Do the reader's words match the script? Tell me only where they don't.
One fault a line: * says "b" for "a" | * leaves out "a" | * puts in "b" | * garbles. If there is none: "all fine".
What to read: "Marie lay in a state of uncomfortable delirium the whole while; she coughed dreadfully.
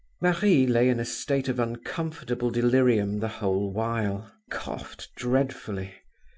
* leaves out "she"